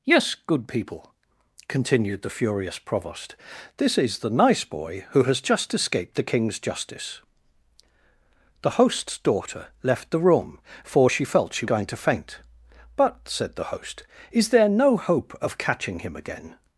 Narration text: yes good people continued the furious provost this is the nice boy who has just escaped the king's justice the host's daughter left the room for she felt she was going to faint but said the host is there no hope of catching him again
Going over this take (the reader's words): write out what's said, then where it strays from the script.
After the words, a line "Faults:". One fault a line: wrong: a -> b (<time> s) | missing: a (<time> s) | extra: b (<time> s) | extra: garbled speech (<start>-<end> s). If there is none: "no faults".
yes good people continued the furious provost this is the nice boy who has just escaped the king's justice the host's daughter left the room for she felt she going to faint but said the host is there no hope of catching him again
Faults:
missing: was (11.7 s)